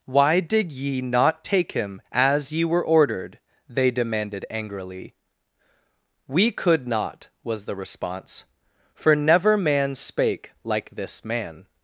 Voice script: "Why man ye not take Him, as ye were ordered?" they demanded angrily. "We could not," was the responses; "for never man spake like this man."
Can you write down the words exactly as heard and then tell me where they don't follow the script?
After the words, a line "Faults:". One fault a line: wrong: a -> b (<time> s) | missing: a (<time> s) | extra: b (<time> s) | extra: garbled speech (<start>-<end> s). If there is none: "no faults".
"Why did ye not take Him, as ye were ordered?" they demanded angrily. "We could not," was the response; "for never man spake like this man."
Faults:
wrong: man -> did (0.4 s)
wrong: responses -> response (7.8 s)